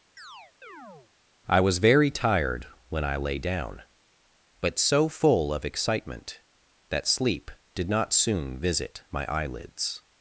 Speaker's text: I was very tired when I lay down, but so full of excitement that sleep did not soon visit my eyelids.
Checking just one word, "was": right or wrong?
right